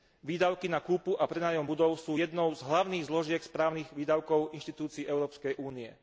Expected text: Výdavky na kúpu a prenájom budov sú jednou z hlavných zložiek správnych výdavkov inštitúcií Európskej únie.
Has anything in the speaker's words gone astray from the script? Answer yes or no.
no